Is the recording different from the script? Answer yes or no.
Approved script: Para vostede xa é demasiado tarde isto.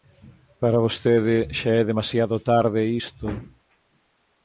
no